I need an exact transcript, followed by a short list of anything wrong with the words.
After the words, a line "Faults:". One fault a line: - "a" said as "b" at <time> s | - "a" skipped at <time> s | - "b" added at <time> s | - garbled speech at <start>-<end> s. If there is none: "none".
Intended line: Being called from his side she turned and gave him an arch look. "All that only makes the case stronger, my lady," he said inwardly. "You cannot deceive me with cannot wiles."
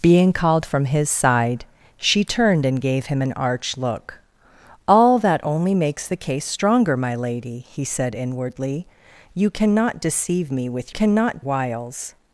Being called from his side she turned and gave him an arch look. "All that only makes the case stronger, my lady," he said inwardly. "You cannot deceive me with cannot wiles."
Faults:
none